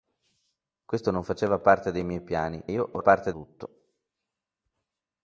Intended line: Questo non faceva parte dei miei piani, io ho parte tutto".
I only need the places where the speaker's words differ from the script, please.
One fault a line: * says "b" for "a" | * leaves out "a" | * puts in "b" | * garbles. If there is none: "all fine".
all fine